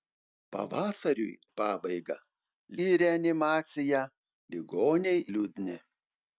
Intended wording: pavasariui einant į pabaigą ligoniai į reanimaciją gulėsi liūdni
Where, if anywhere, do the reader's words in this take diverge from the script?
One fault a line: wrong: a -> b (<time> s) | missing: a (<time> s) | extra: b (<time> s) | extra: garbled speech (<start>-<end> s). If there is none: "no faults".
missing: einant (1.3 s)
missing: ligoniai (2.2 s)
wrong: gulėsi -> ligoniai (4.5 s)